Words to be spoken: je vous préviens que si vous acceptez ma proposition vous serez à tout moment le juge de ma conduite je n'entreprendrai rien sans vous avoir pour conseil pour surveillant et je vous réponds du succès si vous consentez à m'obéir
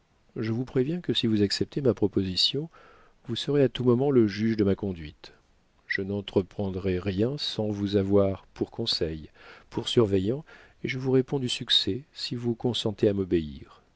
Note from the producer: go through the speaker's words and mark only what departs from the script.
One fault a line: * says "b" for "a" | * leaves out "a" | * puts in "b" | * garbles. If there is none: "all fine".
all fine